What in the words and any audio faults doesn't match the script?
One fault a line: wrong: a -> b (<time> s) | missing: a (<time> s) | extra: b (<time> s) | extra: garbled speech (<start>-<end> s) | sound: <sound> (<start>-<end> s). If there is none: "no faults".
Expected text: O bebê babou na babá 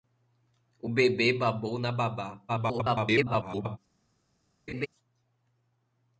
extra: garbled speech (2.5-3.8 s)
sound: laugh (4.7-4.9 s)